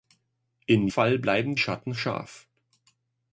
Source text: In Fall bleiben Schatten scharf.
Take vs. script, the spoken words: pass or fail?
pass